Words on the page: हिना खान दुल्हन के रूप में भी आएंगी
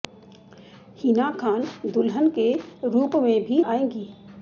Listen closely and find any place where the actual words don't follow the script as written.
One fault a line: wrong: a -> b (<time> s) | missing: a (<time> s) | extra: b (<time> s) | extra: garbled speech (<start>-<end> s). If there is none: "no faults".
no faults